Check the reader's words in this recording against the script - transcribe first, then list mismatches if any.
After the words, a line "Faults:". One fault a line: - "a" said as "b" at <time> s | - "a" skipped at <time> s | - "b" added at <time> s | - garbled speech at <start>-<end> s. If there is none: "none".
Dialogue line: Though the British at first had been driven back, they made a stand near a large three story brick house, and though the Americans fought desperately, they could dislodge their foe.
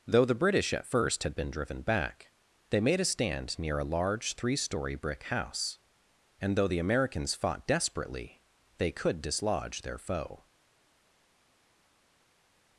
Though the British at first had been driven back, they made a stand near a large three story brick house, and though the Americans fought desperately, they could dislodge their foe.
Faults:
none